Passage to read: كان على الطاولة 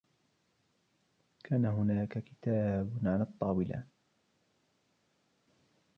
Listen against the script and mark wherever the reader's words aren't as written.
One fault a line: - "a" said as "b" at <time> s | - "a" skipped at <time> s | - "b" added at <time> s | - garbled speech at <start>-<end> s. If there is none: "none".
- "هناك كتاب" added at 1.6 s